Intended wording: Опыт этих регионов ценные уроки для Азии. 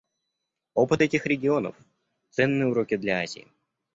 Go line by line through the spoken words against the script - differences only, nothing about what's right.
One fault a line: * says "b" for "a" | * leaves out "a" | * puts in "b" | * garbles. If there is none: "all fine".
all fine